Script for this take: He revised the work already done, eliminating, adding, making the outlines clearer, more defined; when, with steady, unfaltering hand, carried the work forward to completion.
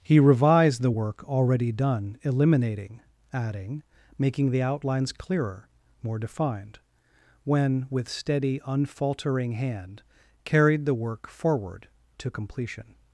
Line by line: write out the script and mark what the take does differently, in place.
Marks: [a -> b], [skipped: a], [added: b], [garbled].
He revised the work already done, eliminating, adding, making the outlines clearer, more defined; when, with steady, unfaltering hand, carried the work forward to completion.